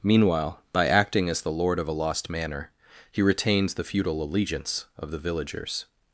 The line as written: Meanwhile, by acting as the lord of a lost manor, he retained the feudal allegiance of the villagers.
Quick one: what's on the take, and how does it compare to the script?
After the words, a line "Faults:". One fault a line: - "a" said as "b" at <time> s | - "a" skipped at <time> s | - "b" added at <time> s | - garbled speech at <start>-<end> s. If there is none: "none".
Meanwhile, by acting as the lord of a lost manor, he retains the feudal allegiance of the villagers.
Faults:
- "retained" said as "retains" at 3.2 s